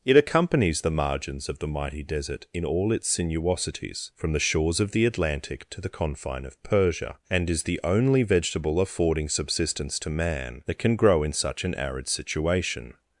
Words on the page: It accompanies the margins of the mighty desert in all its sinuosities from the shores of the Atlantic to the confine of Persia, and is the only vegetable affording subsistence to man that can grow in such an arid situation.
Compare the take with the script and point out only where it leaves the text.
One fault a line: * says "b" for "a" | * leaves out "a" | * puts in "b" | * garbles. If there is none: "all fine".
all fine